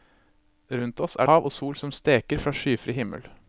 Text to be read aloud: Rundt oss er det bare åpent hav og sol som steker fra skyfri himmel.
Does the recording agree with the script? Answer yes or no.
no